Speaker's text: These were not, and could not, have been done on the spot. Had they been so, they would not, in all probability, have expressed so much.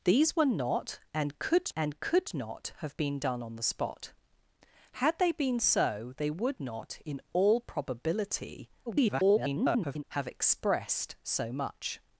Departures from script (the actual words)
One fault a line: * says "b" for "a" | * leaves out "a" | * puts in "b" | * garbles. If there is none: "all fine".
* puts in "and could"
* garbles